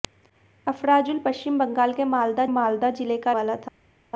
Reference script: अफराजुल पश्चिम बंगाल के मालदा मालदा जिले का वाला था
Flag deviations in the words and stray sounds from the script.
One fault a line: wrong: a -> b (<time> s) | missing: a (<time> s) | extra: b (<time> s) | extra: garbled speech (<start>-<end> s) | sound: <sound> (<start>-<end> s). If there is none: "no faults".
no faults